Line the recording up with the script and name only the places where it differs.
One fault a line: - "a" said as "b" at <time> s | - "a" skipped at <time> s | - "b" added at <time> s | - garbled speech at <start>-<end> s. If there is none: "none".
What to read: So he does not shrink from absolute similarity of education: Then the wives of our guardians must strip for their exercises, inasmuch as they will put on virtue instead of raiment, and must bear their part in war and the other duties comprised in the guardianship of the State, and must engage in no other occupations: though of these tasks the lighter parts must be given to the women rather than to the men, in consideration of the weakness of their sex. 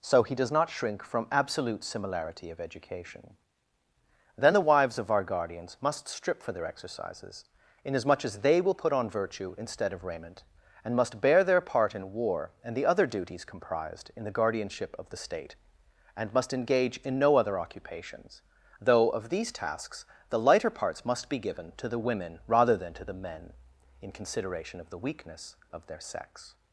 none